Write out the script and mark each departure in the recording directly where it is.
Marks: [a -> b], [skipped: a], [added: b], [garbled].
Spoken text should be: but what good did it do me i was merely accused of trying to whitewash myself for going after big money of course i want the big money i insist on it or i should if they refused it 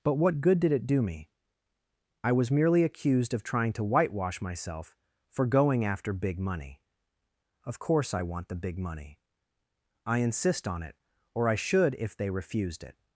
but what good did it do me i was merely accused of trying to whitewash myself for going after big money of course i want the big money i insist on it or i should if they refused it